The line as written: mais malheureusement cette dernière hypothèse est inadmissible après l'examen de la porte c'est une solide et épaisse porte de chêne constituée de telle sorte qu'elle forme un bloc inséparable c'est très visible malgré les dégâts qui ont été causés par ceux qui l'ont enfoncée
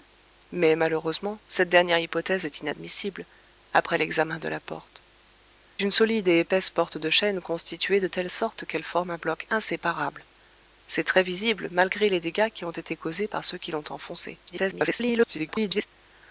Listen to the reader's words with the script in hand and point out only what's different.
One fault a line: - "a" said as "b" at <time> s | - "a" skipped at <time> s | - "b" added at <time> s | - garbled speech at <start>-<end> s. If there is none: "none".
- "c'est" skipped at 5.0 s
- garbled speech at 14.5-15.9 s